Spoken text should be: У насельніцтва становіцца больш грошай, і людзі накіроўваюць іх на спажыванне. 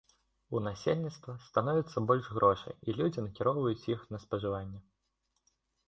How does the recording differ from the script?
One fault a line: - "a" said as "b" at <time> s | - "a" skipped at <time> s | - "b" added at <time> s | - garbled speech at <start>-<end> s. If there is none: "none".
none